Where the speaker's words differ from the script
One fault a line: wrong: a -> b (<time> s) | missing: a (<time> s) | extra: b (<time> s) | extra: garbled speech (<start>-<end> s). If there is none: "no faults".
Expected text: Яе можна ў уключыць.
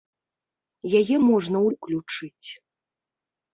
no faults